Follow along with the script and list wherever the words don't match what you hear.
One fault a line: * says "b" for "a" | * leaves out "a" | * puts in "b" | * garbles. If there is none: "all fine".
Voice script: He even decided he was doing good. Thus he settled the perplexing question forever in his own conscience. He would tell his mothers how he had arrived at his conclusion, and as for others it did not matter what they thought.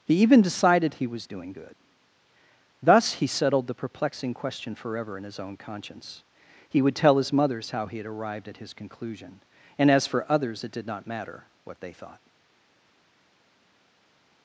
all fine